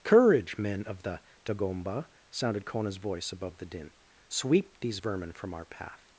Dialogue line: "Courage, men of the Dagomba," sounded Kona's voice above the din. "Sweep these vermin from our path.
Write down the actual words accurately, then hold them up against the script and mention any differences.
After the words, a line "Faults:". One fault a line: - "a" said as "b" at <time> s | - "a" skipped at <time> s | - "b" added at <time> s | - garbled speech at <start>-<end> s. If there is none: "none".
"Courage, men of the Dagomba," sounded Kona's voice above the din. "Sweep these vermin from our path.
Faults:
none